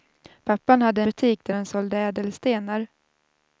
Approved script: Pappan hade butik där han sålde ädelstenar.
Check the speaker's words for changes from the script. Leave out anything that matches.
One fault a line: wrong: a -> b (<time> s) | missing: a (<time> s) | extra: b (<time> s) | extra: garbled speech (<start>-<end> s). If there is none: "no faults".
no faults